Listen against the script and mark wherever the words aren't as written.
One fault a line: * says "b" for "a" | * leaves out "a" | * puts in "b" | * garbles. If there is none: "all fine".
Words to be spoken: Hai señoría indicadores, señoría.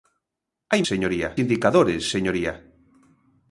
all fine